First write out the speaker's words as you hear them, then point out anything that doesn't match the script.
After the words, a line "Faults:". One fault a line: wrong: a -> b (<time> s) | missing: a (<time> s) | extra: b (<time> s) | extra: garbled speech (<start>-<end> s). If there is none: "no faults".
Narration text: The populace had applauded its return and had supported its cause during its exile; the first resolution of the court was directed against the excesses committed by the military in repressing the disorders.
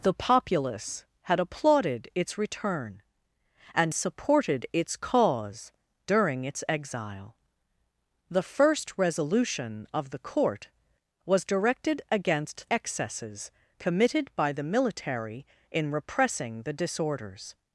The populace had applauded its return and supported its cause during its exile; the first resolution of the court was directed against excesses committed by the military in repressing the disorders.
Faults:
missing: had (3.9 s)
missing: the (12.7 s)